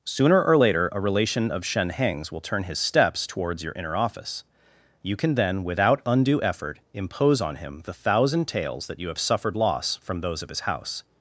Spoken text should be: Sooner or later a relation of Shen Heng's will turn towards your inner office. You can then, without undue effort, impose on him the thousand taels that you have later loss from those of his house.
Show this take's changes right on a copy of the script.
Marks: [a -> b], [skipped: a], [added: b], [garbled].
Sooner or later a relation of Shen Heng's will turn [added: his steps] towards your inner office. You can then, without undue effort, impose on him the thousand taels that you have [later -> suffered] loss from those of his house.